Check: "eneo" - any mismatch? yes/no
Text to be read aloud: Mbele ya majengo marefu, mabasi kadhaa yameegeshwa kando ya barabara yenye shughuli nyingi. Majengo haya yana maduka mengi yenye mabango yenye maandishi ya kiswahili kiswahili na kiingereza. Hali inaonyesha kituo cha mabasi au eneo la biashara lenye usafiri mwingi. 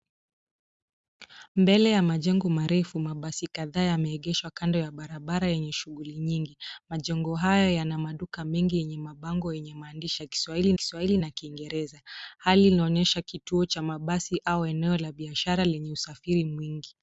no